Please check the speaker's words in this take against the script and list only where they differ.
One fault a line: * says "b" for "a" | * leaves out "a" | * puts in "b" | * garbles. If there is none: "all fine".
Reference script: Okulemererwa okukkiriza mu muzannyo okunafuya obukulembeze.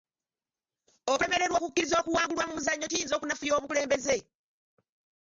* puts in "okuwangulwa"
* puts in "kiyinza"